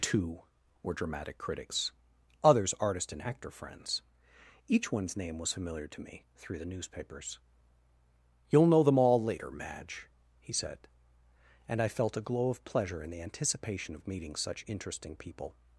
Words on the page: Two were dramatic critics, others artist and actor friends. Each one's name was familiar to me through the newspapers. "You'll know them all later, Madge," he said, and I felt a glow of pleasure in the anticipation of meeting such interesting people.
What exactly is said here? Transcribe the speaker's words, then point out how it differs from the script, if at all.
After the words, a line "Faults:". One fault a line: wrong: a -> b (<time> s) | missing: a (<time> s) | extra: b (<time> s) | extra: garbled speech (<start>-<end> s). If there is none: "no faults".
Two were dramatic critics, others artist and actor friends. Each one's name was familiar to me through the newspapers. "You'll know them all later, Madge," he said, and I felt a glow of pleasure in the anticipation of meeting such interesting people.
Faults:
no faults